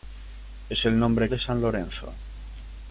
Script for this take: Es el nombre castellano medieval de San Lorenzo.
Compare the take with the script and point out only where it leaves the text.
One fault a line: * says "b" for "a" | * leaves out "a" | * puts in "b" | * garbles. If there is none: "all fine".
* leaves out "castellano medieval"